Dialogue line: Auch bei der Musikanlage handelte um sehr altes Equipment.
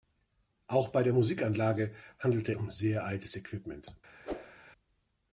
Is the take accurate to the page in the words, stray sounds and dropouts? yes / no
no